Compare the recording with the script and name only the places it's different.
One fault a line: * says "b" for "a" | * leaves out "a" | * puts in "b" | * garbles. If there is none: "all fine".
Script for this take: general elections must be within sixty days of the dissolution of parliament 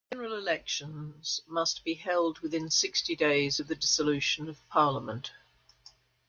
* puts in "held"